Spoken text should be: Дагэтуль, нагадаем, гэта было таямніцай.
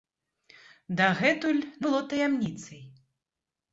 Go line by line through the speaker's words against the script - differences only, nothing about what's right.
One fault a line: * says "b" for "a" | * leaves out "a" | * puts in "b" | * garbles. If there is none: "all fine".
* leaves out "нагадаем гэта"